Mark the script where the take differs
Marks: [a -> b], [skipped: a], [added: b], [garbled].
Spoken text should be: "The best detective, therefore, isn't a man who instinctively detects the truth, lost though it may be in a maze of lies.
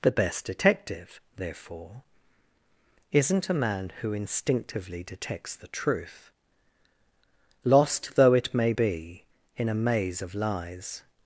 "The best detective, therefore, isn't a man who instinctively detects the truth, lost though it may be in a maze of lies.